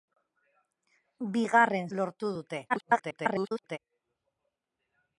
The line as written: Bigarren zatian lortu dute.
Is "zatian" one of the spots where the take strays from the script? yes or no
yes